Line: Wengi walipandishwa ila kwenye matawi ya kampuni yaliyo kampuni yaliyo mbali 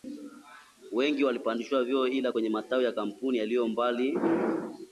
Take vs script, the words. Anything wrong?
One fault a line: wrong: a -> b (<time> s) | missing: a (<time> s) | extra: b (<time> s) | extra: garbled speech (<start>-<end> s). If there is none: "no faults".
extra: vyeo (1.8 s)
missing: kampuni yaliyo (3.7 s)